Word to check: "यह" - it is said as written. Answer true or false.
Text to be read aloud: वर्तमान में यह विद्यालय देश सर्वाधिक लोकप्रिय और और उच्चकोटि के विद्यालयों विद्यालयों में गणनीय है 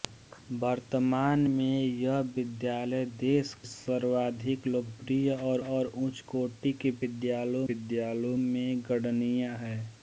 true